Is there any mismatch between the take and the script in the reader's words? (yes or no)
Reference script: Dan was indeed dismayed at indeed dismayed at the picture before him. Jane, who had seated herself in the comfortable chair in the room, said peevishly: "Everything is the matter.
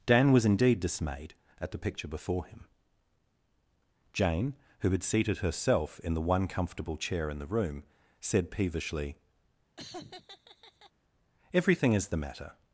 yes